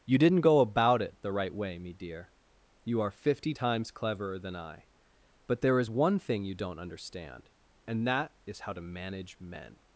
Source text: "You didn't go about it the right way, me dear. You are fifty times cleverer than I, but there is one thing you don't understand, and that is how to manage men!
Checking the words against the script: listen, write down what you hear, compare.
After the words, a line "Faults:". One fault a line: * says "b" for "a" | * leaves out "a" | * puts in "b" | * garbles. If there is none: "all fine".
"You didn't go about it the right way, me dear. You are fifty times cleverer than I, but there is one thing you don't understand, and that is how to manage men!
Faults:
all fine